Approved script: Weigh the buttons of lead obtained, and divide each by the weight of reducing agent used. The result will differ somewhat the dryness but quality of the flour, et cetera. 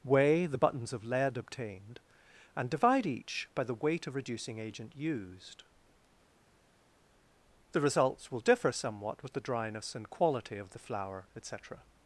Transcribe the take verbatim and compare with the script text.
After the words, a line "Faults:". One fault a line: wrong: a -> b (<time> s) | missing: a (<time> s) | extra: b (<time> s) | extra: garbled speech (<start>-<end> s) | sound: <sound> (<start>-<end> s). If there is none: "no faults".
Weigh the buttons of lead obtained, and divide each by the weight of reducing agent used. The results will differ somewhat with the dryness and quality of the flour, et cetera.
Faults:
wrong: result -> results (7.8 s)
extra: with (9.2 s)
wrong: but -> and (9.9 s)